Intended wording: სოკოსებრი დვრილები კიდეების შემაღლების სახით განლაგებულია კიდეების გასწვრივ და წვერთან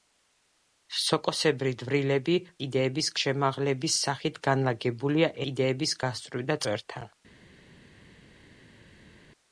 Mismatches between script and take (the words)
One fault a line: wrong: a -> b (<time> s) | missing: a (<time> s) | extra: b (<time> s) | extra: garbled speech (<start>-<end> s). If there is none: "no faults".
no faults